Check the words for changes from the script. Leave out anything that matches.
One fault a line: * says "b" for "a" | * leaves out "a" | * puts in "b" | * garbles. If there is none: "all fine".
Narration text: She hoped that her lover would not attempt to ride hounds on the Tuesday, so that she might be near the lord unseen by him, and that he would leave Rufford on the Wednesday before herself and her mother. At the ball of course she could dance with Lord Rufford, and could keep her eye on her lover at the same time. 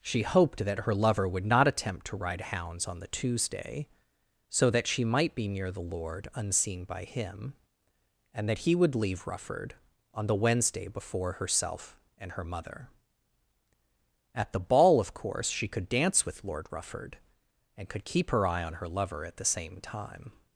all fine